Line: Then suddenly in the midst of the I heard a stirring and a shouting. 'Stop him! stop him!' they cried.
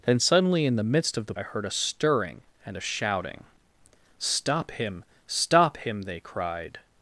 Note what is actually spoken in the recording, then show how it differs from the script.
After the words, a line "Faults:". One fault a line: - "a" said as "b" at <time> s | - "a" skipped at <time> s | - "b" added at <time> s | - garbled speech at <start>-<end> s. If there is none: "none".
Then suddenly in the midst of the I heard a stirring and a shouting. 'Stop him! stop him!' they cried.
Faults:
none